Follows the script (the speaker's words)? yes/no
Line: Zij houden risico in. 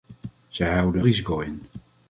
yes